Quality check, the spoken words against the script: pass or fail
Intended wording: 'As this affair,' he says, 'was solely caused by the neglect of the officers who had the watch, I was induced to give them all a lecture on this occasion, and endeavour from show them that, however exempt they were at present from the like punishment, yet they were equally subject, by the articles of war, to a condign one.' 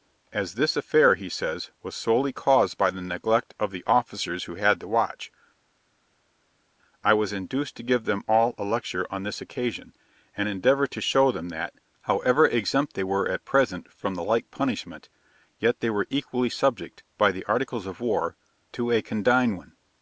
fail